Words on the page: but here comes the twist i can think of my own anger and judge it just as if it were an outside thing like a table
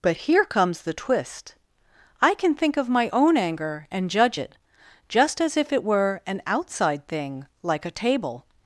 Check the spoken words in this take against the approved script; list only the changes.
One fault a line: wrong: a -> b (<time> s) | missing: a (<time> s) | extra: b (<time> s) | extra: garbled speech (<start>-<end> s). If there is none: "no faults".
no faults